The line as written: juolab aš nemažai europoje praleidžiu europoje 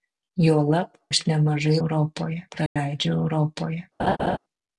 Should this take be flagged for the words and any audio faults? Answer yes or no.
yes